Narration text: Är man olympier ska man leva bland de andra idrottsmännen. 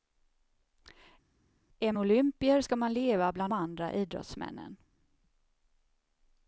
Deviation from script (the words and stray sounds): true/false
true